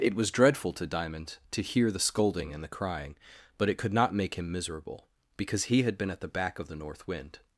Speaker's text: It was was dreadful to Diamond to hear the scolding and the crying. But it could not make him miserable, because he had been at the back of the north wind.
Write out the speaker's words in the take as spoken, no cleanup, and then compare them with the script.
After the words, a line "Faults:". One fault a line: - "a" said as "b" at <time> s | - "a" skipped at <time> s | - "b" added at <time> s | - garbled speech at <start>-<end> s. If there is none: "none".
It was dreadful to Diamond to hear the scolding and the crying. But it could not make him miserable, because he had been at the back of the north wind.
Faults:
- "was" skipped at 0.3 s